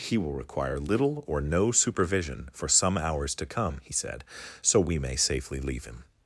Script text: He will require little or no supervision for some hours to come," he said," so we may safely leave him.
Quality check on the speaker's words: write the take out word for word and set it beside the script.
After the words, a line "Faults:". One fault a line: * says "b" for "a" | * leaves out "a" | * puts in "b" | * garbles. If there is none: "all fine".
He will require little or no supervision for some hours to come," he said," so we may safely leave him.
Faults:
all fine